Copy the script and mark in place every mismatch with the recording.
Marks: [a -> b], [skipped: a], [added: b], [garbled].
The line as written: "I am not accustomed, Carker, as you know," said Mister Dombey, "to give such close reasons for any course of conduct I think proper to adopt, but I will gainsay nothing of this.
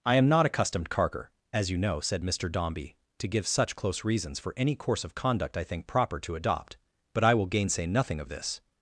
"I am not accustomed, Carker, as you know," said Mister Dombey, "to give such close reasons for any course of conduct I think proper to adopt, but I will gainsay nothing of this.